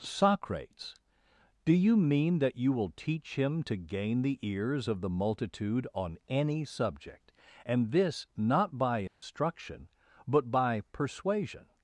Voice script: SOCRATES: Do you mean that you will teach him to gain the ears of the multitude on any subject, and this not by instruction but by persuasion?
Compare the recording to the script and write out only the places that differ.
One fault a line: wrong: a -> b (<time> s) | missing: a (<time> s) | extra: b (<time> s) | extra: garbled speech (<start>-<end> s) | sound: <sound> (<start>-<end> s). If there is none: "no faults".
sound: dropout (9.1-9.2 s)